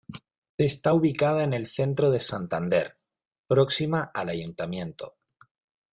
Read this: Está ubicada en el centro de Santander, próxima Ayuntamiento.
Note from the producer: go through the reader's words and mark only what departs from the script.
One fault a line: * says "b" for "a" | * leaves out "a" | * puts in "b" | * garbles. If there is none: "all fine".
* puts in "al"